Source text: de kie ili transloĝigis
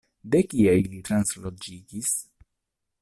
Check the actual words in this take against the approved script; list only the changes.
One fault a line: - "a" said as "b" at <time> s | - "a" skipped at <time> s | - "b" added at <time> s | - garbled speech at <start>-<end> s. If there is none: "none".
none